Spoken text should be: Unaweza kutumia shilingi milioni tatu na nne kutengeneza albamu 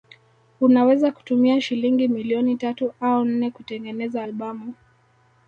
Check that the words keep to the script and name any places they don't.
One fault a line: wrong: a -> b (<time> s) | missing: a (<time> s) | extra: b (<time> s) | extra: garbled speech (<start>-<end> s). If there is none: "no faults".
wrong: na -> au (3.0 s)